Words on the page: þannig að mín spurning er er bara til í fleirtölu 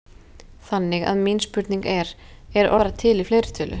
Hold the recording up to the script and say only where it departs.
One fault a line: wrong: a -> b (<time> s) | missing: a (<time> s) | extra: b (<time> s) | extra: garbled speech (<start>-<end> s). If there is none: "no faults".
no faults